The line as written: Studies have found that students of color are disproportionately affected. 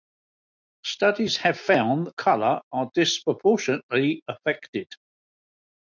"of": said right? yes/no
no